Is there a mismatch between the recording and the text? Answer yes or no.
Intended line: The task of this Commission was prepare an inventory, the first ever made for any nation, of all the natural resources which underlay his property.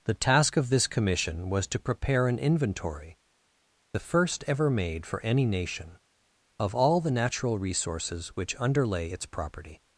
yes